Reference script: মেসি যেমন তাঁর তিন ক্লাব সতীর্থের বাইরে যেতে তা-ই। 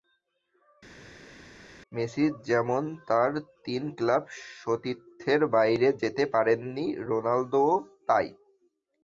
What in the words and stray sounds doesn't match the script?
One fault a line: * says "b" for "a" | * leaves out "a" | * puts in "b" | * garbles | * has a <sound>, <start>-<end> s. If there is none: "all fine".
* puts in "পারেননি রোনালদোও"